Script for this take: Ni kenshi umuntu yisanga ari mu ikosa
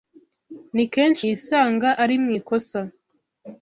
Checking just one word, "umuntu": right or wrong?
wrong